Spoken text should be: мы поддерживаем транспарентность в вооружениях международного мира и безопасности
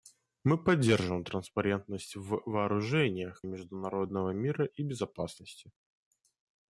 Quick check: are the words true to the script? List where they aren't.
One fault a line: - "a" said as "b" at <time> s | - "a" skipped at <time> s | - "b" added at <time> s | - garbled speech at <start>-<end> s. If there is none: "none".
none